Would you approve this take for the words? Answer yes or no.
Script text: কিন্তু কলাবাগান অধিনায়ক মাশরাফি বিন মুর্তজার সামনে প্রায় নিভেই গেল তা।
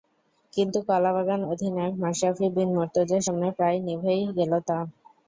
yes